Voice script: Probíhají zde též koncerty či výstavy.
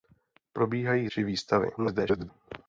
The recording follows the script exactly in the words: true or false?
false